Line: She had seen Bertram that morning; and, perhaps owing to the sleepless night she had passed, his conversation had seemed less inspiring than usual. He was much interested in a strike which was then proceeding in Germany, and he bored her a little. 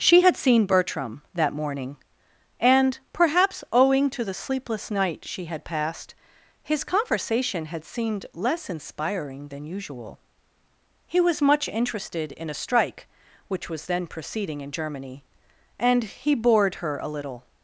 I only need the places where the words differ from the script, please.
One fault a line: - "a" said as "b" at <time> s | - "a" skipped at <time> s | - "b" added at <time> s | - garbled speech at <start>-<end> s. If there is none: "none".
none